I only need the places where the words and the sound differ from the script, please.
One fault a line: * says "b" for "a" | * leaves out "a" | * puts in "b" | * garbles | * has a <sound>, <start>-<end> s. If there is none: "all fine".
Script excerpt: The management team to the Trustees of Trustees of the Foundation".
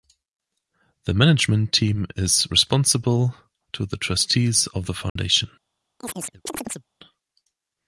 * puts in "is responsible"
* leaves out "Trustees of"
* has a dropout, 5.1-5.2 s
* has a chirp, 6.0-6.9 s